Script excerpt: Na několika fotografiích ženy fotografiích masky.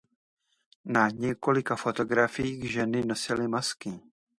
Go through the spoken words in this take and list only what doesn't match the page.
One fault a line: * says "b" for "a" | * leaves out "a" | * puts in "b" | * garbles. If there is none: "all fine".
* says "nosily" for "fotografiích"